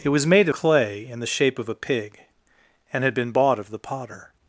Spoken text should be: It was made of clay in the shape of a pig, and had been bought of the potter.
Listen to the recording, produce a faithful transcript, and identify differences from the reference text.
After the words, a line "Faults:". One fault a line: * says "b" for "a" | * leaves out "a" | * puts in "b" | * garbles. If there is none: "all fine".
It was made clay in the shape of a pig, and had been bought of the potter.
Faults:
* leaves out "of"